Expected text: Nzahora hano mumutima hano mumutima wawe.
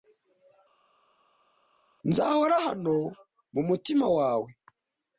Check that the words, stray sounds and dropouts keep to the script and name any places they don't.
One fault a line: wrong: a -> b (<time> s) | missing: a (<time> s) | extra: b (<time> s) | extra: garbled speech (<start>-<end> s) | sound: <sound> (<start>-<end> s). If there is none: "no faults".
missing: hano mumutima (4.1 s)